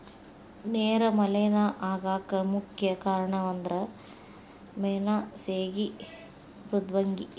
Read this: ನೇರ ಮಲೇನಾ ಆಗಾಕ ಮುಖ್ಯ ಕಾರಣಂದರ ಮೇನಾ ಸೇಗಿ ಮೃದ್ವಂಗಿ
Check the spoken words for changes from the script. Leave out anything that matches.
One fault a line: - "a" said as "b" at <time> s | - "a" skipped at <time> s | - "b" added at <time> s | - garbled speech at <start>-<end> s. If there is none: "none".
none